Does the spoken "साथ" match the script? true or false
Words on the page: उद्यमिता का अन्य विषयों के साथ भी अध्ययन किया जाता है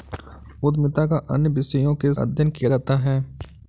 false